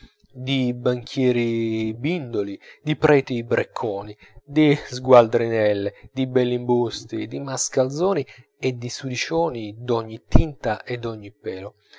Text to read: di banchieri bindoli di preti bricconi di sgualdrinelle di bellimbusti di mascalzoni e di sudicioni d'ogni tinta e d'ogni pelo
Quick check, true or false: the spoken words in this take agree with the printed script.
true